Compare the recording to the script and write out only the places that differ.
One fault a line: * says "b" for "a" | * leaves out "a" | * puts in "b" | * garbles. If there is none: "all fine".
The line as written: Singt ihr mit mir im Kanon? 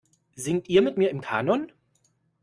all fine